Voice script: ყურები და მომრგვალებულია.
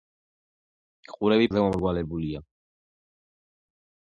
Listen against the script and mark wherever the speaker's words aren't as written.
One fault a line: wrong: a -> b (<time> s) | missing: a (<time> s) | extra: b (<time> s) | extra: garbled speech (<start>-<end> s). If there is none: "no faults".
no faults